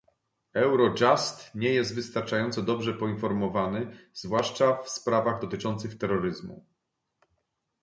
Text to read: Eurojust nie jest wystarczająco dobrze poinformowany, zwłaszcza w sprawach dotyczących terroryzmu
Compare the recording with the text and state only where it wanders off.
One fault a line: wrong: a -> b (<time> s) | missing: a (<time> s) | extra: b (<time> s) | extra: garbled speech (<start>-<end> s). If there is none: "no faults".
no faults